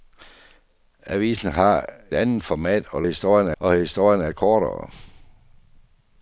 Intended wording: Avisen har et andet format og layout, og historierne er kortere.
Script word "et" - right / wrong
wrong